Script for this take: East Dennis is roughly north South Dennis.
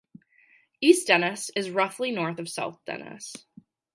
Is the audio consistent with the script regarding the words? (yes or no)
no